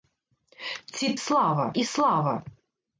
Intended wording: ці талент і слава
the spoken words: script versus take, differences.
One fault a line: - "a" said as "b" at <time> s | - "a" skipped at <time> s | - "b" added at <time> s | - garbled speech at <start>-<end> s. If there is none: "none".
- "талент" said as "слава" at 1.1 s